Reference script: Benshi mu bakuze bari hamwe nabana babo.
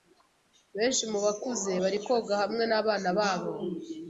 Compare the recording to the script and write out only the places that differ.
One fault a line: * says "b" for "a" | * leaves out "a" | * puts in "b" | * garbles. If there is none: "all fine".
* puts in "koga"